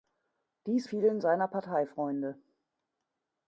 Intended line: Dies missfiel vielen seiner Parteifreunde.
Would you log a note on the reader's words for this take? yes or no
yes